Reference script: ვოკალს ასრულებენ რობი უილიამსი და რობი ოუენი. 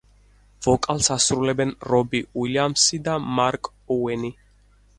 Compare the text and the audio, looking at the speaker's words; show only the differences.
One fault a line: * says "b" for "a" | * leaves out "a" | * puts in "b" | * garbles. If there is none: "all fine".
* says "მარკ" for "რობი"